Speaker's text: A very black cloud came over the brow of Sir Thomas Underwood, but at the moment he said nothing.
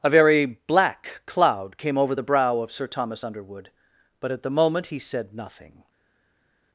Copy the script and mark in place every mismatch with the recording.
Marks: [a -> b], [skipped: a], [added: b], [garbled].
A very black cloud came over the brow of Sir Thomas Underwood, but at the moment he said nothing.